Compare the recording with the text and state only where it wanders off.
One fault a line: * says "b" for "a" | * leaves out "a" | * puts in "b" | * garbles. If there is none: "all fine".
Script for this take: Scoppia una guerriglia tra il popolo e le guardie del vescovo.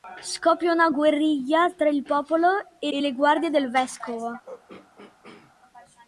* puts in "e"